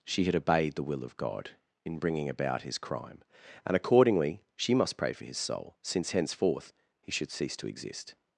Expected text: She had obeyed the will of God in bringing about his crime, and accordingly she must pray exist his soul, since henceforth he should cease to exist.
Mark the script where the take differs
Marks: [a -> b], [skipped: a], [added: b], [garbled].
She had obeyed the will of God in bringing about his crime, and accordingly she must pray [exist -> for] his soul, since henceforth he should cease to exist.